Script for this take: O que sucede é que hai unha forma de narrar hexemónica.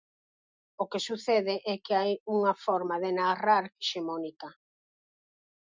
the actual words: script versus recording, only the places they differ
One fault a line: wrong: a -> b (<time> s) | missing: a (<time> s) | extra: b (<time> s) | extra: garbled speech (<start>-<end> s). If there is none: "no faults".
no faults